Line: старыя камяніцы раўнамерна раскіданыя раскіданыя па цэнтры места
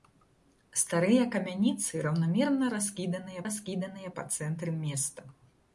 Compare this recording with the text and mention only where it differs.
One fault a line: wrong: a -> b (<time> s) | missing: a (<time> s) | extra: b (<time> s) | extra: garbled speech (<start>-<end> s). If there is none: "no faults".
no faults